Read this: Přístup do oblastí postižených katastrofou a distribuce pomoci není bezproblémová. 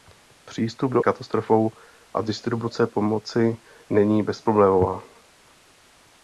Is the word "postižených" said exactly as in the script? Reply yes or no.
no